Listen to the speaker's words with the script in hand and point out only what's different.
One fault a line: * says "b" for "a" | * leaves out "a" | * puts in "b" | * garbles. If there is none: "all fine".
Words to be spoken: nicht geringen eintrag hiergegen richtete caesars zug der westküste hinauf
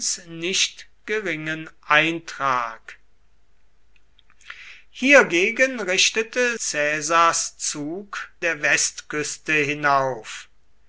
all fine